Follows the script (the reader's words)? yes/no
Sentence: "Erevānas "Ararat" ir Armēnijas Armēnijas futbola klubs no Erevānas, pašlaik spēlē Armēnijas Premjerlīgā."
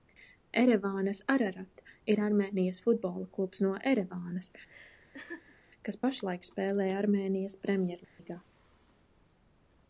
no